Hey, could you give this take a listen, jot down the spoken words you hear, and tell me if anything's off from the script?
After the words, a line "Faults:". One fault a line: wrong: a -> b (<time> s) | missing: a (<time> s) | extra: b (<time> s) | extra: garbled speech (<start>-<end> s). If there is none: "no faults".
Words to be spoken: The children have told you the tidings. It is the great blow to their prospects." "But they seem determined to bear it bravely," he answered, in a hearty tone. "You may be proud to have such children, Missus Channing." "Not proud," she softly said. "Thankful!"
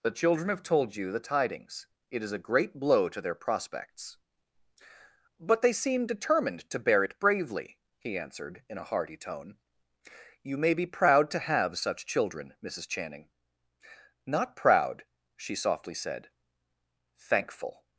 The children have told you the tidings. It is a great blow to their prospects." "But they seem determined to bear it bravely," he answered, in a hearty tone. "You may be proud to have such children, Missus Channing." "Not proud," she softly said. "Thankful!"
Faults:
wrong: the -> a (2.3 s)